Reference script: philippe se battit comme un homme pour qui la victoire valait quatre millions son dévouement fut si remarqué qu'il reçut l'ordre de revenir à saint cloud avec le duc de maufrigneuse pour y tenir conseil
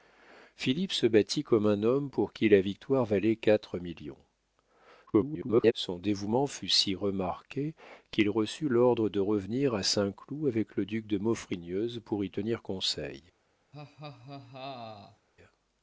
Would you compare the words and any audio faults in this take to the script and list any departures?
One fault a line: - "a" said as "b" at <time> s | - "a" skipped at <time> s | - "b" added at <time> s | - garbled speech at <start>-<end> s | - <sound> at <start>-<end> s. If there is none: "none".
- garbled speech at 5.1-5.7 s
- laugh at 13.7-15.3 s